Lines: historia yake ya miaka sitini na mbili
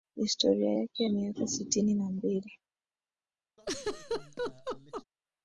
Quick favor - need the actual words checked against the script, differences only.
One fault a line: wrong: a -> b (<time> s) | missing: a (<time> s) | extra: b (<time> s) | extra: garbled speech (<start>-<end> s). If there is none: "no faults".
no faults